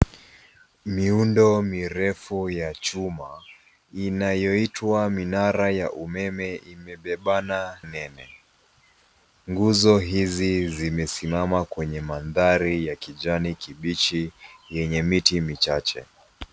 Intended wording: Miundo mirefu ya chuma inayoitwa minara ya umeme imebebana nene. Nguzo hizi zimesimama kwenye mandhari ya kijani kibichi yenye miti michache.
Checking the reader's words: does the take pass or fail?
pass